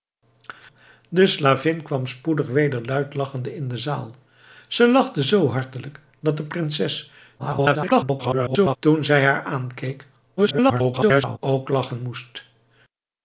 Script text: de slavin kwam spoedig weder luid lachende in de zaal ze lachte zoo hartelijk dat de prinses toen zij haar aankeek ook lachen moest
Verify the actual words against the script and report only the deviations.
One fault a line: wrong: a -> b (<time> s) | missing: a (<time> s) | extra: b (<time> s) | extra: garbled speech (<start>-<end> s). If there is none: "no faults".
extra: garbled speech (7.4-8.8 s)
extra: garbled speech (10.4-11.4 s)